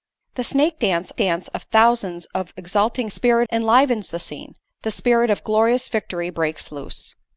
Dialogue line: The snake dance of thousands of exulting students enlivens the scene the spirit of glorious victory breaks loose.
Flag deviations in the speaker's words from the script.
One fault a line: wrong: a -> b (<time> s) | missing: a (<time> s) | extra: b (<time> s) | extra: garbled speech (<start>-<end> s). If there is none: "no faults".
extra: dance (1.2 s)
wrong: students -> spirit (3.1 s)